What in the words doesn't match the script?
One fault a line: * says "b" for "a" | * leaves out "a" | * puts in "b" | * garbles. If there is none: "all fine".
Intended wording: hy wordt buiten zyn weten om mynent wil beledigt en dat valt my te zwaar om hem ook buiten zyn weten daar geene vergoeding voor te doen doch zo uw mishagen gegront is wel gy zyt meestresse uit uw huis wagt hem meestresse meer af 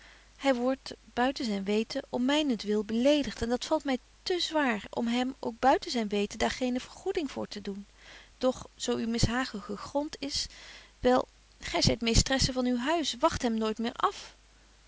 * says "van" for "uit"
* says "nooit" for "meestresse"